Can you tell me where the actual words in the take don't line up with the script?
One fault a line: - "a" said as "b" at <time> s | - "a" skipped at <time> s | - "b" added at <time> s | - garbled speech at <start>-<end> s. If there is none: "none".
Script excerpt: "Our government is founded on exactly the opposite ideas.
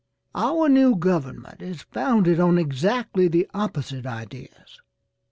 - "new" added at 0.7 s